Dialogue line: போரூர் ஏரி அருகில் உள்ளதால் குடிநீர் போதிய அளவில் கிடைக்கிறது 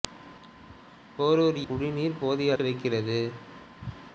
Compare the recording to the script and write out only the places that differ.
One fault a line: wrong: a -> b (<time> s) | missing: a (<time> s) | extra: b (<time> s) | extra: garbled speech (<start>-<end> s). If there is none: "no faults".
missing: ஏரி அருகில் உள்ளதால் (1.6 s)
missing: அளவில் (2.5 s)